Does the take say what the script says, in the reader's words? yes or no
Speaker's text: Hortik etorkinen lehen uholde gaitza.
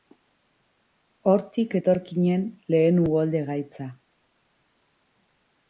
yes